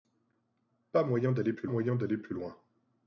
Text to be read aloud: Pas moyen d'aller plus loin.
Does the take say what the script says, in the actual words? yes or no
no